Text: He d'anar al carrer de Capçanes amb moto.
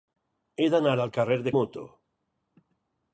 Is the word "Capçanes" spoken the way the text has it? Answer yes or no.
no